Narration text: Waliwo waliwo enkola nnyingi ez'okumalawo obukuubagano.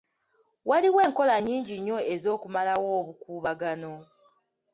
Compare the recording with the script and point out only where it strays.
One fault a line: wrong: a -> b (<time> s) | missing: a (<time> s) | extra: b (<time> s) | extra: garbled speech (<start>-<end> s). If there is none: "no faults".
missing: waliwo (1.0 s)
extra: nnyo (1.8 s)